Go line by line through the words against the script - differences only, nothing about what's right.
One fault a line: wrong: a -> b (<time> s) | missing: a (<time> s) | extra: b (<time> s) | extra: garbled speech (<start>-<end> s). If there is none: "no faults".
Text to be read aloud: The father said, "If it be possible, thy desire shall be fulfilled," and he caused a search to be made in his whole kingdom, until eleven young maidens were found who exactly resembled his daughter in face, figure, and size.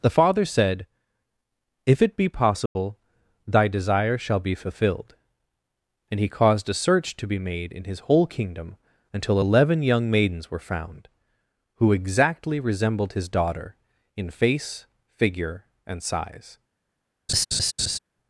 no faults